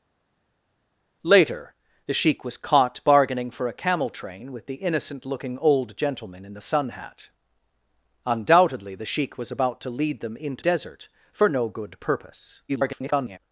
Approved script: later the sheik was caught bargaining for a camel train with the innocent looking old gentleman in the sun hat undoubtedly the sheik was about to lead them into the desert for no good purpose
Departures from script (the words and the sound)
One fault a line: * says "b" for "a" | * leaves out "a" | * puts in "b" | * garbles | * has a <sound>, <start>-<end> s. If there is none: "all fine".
* leaves out "the"
* garbles